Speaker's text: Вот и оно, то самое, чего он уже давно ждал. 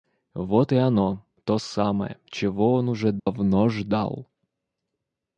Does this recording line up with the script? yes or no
yes